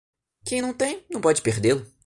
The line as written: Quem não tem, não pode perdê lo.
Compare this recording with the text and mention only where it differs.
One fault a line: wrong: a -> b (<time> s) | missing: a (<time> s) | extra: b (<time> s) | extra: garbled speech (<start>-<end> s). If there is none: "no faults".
no faults